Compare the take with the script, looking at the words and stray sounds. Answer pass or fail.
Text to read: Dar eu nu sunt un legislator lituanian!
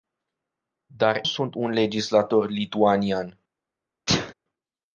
fail